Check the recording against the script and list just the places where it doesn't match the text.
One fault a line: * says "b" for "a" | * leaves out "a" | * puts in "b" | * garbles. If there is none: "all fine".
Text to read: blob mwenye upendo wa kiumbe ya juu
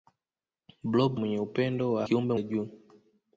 all fine